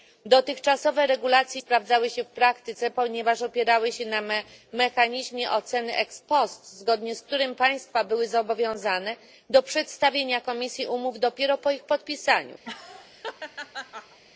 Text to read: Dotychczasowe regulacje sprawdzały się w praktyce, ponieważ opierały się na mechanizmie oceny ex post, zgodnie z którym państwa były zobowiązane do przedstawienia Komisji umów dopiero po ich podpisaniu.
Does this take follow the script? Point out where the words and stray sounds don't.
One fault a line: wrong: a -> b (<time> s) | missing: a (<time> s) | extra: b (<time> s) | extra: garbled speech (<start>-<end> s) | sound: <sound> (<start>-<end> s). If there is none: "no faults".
sound: laugh (12.6-14.2 s)